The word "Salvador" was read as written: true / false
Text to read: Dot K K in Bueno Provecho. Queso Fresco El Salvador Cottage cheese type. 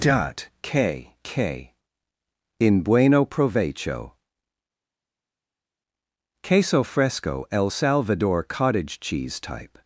true